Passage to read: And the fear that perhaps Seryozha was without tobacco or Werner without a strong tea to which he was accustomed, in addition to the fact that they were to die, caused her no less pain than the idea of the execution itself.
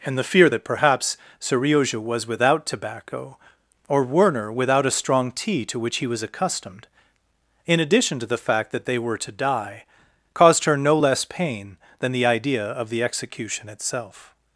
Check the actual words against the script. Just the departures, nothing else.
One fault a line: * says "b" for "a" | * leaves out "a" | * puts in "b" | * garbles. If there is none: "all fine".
all fine